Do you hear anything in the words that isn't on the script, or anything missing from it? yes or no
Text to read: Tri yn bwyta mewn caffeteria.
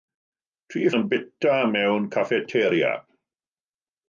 no